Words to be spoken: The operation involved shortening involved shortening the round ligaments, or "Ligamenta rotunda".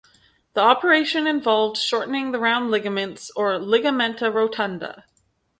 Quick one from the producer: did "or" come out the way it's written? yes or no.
yes